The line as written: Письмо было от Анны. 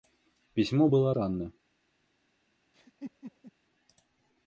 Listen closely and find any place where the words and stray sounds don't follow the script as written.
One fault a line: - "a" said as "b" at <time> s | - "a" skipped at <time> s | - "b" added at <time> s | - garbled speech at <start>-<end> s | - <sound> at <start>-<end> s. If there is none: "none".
- "от" skipped at 1.1 s
- laugh at 2.7-3.5 s